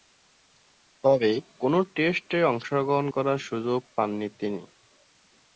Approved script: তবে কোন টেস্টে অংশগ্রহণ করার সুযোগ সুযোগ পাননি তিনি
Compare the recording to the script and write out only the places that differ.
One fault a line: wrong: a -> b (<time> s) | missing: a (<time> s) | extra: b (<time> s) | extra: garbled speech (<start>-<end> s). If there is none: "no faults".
missing: সুযোগ (3.8 s)